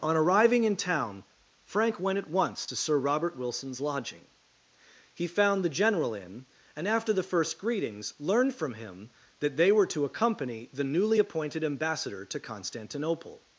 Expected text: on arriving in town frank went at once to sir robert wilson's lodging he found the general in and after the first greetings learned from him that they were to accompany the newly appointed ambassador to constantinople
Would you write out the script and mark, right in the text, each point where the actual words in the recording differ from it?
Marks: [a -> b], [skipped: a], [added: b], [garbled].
on arriving in town frank went at once to sir robert wilson's lodging he found the general in and after the first greetings learned from him that they were to accompany the newly appointed ambassador to constantinople